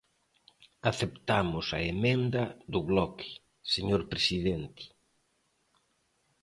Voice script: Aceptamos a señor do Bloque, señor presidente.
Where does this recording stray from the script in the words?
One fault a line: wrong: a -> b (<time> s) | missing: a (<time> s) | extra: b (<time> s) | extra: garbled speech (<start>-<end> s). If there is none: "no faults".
wrong: señor -> emenda (1.9 s)